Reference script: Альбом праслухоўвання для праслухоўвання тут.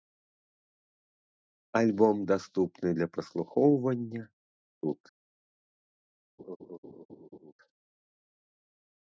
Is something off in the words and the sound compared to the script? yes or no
yes